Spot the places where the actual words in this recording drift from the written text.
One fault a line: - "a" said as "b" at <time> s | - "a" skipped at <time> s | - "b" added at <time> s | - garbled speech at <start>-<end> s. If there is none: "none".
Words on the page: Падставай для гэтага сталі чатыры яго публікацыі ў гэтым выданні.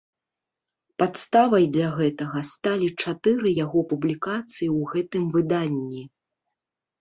none